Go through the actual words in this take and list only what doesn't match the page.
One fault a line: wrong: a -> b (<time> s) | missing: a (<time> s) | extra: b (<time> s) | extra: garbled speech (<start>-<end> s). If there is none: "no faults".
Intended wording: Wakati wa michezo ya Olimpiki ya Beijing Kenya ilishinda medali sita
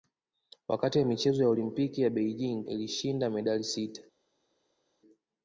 missing: Kenya (2.6 s)